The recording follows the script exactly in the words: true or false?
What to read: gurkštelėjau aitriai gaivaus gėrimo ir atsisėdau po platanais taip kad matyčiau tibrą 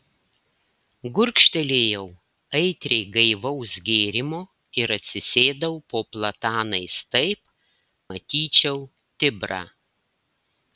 false